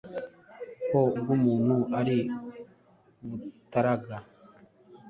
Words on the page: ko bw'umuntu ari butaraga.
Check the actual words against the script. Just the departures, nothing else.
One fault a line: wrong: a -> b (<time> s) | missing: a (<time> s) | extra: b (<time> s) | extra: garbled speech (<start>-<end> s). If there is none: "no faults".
no faults